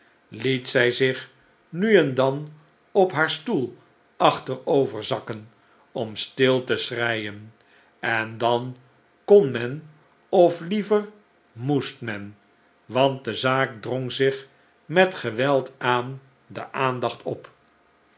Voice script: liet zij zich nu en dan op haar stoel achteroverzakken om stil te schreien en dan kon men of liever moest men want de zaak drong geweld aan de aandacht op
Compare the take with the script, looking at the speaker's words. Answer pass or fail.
fail